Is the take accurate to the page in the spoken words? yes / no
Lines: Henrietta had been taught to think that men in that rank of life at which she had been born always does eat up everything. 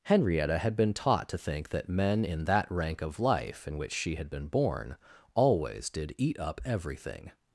no